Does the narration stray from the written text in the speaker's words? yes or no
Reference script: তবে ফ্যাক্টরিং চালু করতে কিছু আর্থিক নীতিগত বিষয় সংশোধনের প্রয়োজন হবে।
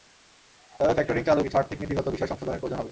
yes